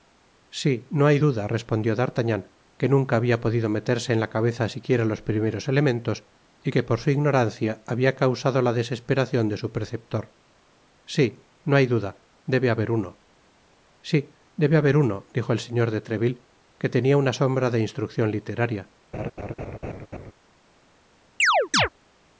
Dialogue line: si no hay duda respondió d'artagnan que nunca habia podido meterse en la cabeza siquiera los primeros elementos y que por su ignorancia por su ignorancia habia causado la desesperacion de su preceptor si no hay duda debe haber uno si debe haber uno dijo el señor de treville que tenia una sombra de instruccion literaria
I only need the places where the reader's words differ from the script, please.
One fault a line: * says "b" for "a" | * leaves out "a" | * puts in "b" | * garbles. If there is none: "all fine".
* leaves out "por su ignorancia"